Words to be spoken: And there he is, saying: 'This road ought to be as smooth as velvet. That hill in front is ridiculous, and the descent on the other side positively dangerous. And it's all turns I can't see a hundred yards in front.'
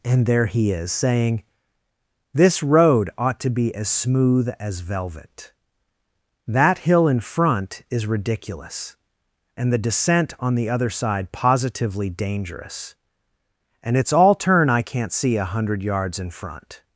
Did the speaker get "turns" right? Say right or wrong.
wrong